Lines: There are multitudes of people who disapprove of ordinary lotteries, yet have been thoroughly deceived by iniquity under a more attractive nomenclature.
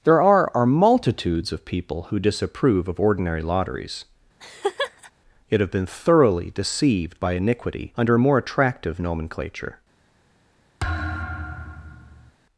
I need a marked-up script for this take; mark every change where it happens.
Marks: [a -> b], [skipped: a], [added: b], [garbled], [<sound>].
There are [added: are] multitudes of people who disapprove of ordinary lotteries, [laugh] yet have been thoroughly deceived by iniquity under a more attractive nomenclature. [thud]